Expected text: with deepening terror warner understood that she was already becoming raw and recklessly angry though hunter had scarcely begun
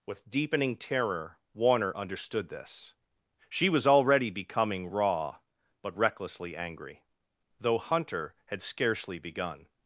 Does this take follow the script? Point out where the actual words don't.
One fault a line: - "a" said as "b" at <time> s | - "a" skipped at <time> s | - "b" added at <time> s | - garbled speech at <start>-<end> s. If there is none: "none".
- "that" said as "this" at 2.5 s
- "and" said as "but" at 5.8 s